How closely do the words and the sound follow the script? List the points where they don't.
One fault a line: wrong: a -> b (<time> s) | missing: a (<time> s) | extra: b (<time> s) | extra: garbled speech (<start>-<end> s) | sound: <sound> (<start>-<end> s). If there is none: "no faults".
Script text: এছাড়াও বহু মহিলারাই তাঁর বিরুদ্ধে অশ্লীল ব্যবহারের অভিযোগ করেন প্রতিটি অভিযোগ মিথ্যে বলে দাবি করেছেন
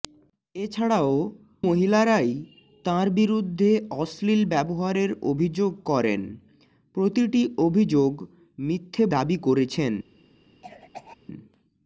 missing: বহু (1.1 s)
missing: বলে (9.0 s)
sound: cough (10.6-11.2 s)